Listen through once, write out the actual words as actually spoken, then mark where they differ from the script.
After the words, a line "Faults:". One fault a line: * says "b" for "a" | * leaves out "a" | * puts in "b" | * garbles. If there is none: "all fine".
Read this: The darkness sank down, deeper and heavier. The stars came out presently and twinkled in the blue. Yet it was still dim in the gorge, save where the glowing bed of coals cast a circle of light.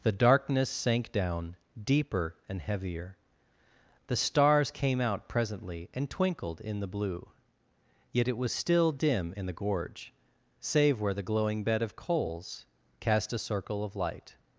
The darkness sank down, deeper and heavier. The stars came out presently and twinkled in the blue. Yet it was still dim in the gorge, save where the glowing bed of coals cast a circle of light.
Faults:
all fine